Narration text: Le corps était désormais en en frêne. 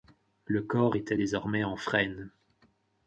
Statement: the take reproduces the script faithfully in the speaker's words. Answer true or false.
false